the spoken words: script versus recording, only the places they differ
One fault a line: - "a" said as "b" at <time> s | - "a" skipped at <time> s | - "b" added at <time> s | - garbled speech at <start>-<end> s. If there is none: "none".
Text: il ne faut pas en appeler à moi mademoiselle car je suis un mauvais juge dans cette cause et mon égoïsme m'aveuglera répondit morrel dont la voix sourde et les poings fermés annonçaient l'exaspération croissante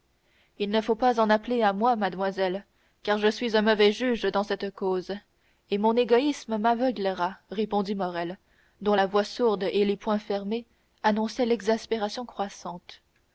none